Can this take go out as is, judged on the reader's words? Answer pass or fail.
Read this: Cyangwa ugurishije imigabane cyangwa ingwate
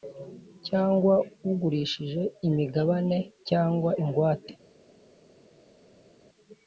pass